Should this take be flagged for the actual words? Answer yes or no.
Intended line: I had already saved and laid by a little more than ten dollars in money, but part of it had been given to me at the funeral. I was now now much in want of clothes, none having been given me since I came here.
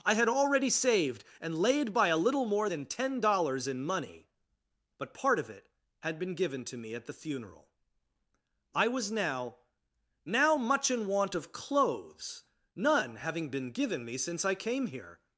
no